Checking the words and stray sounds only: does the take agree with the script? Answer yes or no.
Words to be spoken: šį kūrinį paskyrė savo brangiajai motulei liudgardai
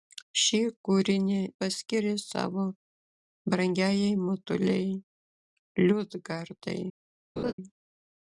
no